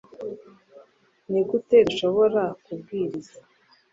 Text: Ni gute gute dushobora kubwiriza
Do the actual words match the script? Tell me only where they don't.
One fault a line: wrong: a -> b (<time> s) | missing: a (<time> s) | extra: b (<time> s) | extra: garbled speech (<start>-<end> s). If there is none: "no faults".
missing: gute (1.8 s)